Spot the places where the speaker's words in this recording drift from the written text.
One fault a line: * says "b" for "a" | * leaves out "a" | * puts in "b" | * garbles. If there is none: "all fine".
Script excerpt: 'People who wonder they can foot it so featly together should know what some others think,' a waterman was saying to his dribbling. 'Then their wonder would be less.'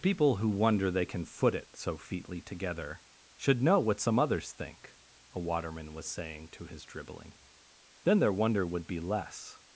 all fine